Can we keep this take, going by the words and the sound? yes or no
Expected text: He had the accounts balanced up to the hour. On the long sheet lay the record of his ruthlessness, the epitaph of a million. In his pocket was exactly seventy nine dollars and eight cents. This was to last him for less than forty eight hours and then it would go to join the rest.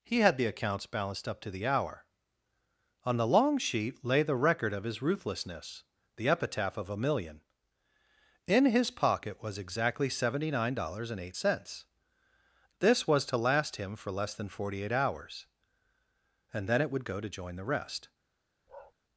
no